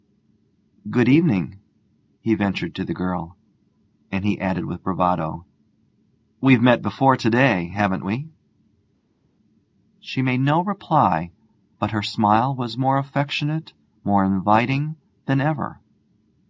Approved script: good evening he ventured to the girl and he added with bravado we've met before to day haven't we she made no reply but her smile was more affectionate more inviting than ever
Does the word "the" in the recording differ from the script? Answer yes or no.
no